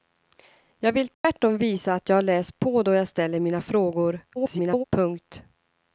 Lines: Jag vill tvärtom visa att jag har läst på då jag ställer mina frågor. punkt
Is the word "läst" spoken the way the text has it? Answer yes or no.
yes